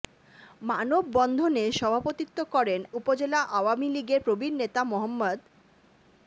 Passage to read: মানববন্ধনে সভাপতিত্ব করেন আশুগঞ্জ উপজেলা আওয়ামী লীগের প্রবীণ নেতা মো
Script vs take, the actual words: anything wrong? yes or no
yes